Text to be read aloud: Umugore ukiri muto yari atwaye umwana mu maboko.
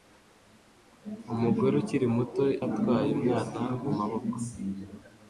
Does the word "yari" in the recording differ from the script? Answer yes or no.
yes